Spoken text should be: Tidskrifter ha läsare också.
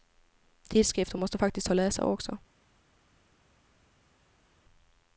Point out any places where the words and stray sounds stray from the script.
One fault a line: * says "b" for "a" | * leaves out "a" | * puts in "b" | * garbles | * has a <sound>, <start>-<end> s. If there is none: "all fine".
* puts in "måste faktiskt"